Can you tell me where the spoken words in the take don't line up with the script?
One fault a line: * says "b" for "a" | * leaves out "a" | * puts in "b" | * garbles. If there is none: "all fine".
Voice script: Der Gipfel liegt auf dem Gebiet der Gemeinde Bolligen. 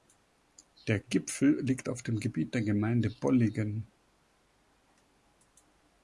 all fine